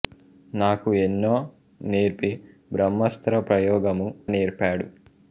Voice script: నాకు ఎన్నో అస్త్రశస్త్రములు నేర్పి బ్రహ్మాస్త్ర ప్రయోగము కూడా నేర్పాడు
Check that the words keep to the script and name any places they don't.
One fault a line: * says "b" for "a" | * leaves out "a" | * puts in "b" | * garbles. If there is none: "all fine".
* leaves out "అస్త్రశస్త్రములు"
* leaves out "కూడా"